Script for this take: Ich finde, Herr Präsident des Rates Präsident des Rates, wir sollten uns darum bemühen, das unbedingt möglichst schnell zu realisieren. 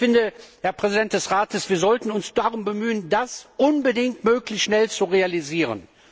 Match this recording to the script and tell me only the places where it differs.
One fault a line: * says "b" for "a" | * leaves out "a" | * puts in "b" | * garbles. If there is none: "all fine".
* leaves out "Präsident des Rates"